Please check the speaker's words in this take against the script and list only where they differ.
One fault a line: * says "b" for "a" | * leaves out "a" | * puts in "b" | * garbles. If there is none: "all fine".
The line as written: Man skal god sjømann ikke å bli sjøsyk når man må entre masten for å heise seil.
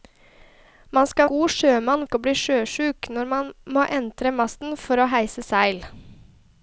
all fine